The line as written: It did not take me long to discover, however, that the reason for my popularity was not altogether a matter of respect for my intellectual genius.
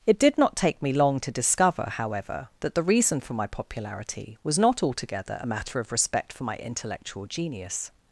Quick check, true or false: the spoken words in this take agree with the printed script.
true